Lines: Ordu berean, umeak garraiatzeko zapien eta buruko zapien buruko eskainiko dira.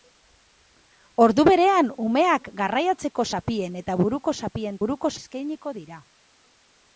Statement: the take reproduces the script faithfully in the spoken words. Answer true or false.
true